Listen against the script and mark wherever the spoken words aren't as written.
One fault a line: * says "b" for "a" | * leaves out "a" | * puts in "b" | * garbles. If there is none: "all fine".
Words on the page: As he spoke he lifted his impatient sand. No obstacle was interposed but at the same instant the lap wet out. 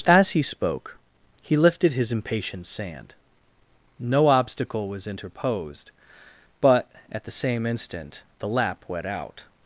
all fine